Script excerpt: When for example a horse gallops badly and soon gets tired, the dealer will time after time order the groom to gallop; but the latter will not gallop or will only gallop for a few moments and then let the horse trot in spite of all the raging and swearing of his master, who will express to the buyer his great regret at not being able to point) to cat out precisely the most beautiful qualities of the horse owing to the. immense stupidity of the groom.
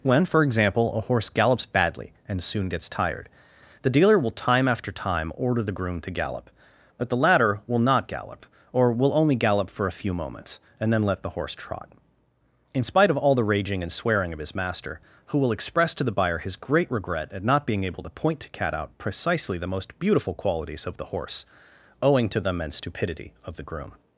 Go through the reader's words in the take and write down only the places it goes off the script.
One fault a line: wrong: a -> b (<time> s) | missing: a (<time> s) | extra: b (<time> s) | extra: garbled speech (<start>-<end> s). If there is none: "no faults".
no faults